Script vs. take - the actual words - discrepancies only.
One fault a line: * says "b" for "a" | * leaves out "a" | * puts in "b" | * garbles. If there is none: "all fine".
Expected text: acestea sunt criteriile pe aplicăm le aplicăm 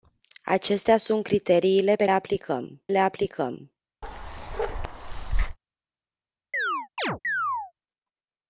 all fine